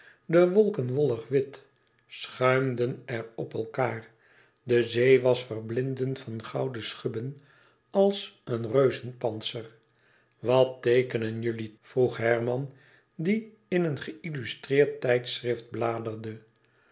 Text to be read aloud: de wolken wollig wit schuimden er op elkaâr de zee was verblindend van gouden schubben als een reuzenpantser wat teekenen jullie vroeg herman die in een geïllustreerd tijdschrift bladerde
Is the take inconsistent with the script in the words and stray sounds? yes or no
no